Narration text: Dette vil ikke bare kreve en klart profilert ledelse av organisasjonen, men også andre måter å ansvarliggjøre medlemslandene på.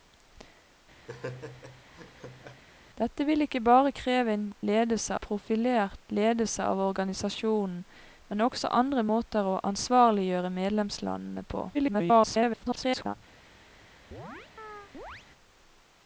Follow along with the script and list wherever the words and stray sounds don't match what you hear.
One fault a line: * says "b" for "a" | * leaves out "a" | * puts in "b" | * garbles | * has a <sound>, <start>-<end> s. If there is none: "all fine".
* has a laugh, 1.1-2.6 s
* says "ledelse" for "klart"
* garbles
* has a chirp, 14.1-15.3 s